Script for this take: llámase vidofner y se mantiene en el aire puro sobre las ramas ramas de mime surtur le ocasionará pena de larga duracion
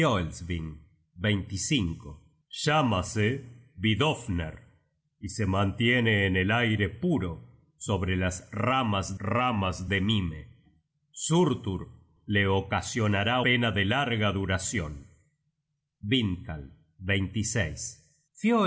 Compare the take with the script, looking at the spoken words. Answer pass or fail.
pass